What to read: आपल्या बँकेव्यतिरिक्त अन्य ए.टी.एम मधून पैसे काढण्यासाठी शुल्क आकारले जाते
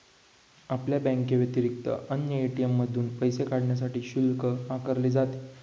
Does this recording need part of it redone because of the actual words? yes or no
no